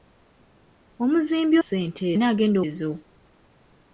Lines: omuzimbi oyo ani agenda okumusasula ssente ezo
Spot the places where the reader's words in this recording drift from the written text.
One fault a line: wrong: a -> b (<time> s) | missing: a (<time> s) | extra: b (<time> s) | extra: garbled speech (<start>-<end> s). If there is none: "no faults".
wrong: oyo -> ssente (1.6 s)
missing: okumusasula ssente (2.6 s)